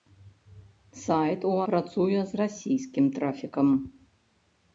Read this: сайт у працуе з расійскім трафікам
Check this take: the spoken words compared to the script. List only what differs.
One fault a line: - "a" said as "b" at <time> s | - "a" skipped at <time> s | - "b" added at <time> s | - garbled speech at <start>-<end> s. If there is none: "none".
none